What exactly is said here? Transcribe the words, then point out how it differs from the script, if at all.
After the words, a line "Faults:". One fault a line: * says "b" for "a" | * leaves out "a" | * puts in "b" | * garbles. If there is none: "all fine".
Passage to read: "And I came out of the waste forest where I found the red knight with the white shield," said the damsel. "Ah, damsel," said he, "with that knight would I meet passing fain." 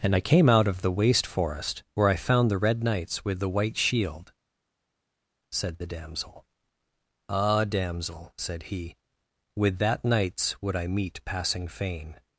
"And I came out of the waste forest where I found the red knights with the white shield," said the damsel. "Ah, damsel," said he, "with that knights would I meet passing fain."
Faults:
* says "knights" for "knight"
* says "knights" for "knight"